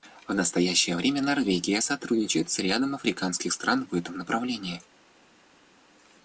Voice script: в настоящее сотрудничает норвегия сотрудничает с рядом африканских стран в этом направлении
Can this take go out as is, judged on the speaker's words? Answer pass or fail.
fail